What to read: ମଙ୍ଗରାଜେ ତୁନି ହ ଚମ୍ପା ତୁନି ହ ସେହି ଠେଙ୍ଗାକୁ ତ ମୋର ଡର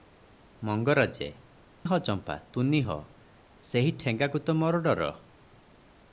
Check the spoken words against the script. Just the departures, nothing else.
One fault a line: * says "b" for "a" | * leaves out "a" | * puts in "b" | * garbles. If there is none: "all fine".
* leaves out "ତୁନି"